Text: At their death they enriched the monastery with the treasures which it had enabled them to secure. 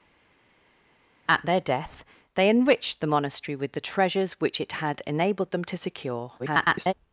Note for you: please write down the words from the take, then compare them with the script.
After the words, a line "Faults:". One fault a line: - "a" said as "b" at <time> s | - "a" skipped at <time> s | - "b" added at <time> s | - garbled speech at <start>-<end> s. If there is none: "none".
At their death they enriched the monastery with the treasures which it had enabled them to secure. [garbled]
Faults:
- garbled speech at 6.4-6.9 s